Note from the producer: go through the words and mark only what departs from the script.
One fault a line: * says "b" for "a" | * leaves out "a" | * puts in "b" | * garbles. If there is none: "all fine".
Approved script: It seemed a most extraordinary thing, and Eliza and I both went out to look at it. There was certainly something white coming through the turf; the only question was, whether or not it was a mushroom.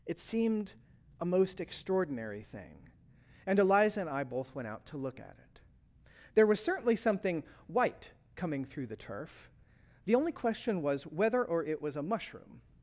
* leaves out "not"